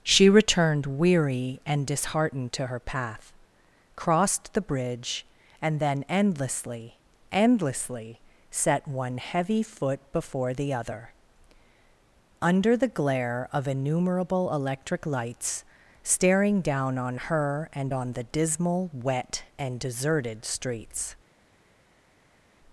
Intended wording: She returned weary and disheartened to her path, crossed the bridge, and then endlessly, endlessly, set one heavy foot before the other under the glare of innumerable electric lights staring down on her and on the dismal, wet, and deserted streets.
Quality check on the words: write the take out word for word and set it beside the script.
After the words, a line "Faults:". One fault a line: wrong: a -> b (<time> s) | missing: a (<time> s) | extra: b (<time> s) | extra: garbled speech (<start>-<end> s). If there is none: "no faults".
She returned weary and disheartened to her path, crossed the bridge, and then endlessly, endlessly, set one heavy foot before the other under the glare of innumerable electric lights staring down on her and on the dismal, wet, and deserted streets.
Faults:
no faults